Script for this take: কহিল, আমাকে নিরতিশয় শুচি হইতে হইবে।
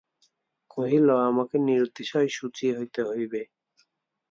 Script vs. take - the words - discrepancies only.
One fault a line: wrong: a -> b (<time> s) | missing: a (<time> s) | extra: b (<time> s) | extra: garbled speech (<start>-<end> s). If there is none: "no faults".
no faults